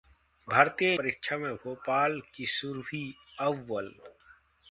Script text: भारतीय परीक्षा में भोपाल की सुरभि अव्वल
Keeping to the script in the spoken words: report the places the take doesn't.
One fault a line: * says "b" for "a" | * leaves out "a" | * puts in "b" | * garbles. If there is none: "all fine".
all fine